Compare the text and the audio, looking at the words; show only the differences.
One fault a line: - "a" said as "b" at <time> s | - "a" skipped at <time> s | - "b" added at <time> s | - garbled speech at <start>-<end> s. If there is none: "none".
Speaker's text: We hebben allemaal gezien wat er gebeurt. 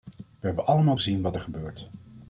none